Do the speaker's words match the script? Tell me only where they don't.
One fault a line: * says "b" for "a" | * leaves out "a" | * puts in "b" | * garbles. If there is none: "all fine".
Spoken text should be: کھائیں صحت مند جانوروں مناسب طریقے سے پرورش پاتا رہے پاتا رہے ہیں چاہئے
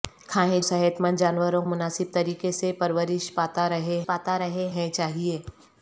all fine